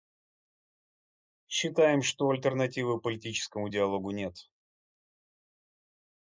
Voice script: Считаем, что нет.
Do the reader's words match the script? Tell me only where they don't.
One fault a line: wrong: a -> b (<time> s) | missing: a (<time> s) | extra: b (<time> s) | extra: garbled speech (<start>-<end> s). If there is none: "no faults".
extra: альтернативы политическому диалогу (2.3 s)